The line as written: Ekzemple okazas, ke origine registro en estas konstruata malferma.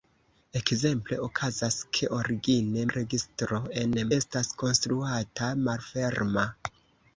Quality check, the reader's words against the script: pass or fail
pass